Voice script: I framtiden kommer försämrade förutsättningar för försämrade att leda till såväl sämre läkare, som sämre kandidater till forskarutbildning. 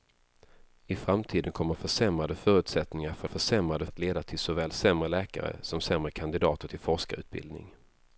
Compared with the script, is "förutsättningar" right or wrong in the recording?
right